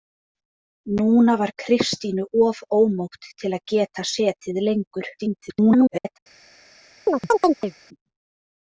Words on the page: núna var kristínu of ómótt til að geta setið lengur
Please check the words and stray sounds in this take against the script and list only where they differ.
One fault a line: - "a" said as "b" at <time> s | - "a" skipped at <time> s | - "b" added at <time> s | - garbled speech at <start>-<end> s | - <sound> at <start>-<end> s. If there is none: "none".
- garbled speech at 5.2-6.2 s
- chirp at 7.1-7.7 s